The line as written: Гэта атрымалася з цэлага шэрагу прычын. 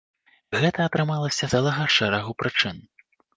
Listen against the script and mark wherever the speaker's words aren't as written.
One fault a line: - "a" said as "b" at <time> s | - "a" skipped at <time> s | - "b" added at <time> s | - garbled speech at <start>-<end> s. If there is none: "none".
- "з" skipped at 1.4 s